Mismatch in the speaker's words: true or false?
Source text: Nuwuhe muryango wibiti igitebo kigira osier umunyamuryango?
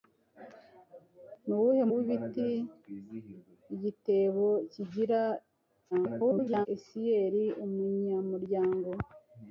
true